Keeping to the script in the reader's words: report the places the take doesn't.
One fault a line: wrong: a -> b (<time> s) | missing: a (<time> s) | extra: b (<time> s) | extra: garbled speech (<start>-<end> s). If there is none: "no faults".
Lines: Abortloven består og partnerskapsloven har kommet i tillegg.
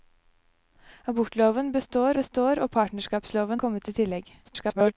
extra: består (2.1 s)
missing: har (3.6 s)
extra: garbled speech (4.4-4.9 s)